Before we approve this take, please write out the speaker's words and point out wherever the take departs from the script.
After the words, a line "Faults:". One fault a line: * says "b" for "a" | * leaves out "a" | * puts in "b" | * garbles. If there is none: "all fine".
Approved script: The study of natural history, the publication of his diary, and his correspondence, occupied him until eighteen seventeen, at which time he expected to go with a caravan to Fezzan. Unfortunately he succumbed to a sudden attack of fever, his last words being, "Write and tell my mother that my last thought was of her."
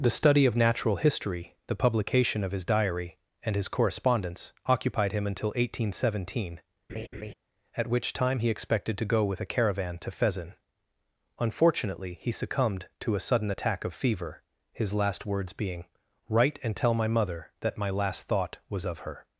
The study of natural history, the publication of his diary, and his correspondence, occupied him until eighteen seventeen, at which time he expected to go with a caravan to Fezzan. Unfortunately he succumbed to a sudden attack of fever, his last words being, "Write and tell my mother that my last thought was of her."
Faults:
all fine